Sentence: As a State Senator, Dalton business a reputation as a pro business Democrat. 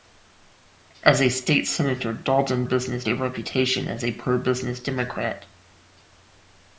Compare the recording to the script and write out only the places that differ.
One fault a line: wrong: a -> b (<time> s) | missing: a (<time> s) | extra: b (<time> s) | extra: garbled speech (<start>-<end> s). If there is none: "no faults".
no faults